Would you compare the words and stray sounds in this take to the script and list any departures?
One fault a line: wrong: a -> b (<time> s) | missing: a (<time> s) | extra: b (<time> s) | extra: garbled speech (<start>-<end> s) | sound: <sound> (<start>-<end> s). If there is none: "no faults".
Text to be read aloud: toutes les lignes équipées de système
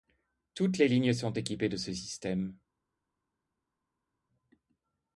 extra: sont (1.1 s)
extra: ce (1.8 s)